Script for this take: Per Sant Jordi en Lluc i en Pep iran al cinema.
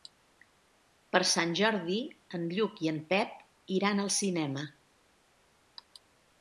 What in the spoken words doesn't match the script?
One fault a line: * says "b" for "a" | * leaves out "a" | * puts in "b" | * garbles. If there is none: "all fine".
all fine